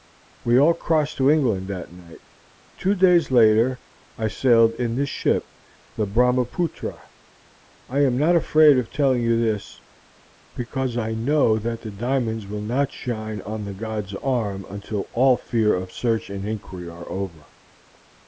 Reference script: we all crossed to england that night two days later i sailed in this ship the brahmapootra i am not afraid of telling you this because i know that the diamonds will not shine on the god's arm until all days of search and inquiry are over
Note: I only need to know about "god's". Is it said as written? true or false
true